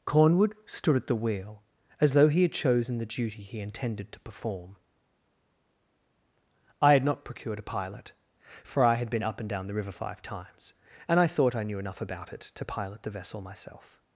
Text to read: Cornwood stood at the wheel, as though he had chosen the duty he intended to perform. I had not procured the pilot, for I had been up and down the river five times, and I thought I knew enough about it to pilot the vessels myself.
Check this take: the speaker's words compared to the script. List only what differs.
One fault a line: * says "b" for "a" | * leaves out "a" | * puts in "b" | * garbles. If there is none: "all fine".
* says "a" for "the"
* says "vessel" for "vessels"